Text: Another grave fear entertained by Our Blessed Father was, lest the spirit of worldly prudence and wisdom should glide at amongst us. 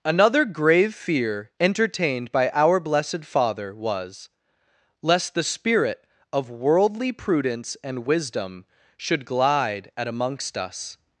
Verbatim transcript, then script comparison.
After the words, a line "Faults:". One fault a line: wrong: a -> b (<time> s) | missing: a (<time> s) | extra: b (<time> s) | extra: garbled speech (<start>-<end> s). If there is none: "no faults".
Another grave fear entertained by Our Blessed Father was, lest the spirit of worldly prudence and wisdom should glide at amongst us.
Faults:
no faults